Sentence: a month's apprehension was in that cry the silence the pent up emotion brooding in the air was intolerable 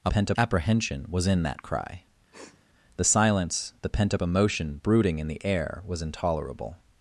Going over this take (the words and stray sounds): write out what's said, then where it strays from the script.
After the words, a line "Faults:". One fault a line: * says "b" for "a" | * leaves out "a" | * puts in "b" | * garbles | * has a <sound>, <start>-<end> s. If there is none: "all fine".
a pent apprehension was in that cry the silence the pent up emotion brooding in the air was intolerable
Faults:
* says "pent" for "month's"
* has a sniff, 2.3-2.7 s